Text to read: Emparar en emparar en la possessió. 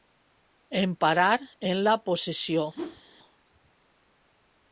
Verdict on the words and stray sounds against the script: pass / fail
fail